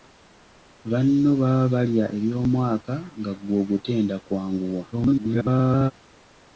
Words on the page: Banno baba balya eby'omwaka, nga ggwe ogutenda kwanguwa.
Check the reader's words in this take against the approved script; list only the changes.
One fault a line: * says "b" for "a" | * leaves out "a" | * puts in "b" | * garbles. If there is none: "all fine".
* garbles